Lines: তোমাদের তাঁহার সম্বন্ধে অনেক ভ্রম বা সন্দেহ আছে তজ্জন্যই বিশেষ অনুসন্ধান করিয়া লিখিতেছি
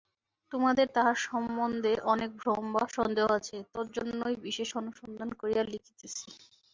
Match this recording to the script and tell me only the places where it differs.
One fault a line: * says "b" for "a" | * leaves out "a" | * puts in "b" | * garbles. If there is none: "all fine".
all fine